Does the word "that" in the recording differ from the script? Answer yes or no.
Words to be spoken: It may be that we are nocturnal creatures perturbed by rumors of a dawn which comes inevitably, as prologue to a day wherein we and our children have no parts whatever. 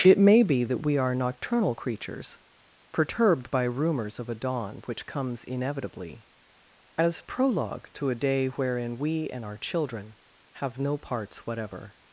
no